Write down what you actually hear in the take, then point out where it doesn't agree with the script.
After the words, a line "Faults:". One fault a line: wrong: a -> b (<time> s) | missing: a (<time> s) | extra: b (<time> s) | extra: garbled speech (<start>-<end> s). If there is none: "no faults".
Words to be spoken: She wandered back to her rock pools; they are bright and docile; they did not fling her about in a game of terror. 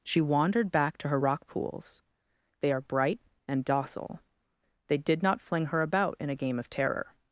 She wandered back to her rock pools; they are bright and docile; they did not fling her about in a game of terror.
Faults:
no faults